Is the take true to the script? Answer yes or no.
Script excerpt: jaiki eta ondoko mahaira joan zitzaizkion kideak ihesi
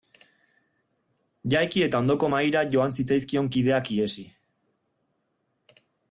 yes